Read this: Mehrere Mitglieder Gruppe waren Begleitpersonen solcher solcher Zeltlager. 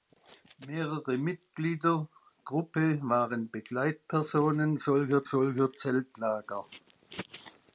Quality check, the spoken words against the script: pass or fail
pass